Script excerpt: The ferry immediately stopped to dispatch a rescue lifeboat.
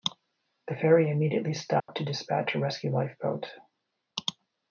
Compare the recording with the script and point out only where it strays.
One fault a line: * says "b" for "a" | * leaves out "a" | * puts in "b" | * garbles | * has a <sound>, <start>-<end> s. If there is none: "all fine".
* has a dropout, 1.8-1.9 s